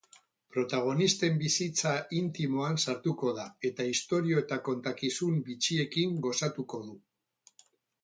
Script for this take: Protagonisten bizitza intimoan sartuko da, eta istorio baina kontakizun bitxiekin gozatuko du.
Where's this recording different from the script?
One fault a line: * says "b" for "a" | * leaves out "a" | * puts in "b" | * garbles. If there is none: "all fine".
* says "eta" for "baina"